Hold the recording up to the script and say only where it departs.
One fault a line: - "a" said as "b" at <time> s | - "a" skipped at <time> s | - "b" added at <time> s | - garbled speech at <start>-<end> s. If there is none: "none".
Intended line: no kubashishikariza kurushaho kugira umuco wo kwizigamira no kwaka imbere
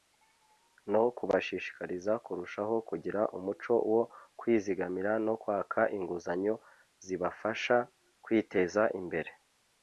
- "inguzanyo zibafasha kwiteza" added at 6.0 s